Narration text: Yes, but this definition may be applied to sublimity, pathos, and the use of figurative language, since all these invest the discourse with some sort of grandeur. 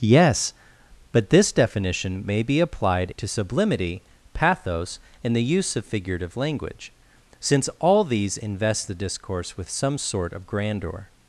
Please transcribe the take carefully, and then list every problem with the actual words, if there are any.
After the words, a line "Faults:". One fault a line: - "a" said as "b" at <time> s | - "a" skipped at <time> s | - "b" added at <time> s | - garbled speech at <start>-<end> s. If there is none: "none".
Yes, but this definition may be applied to sublimity, pathos, and the use of figurative language, since all these invest the discourse with some sort of grandeur.
Faults:
none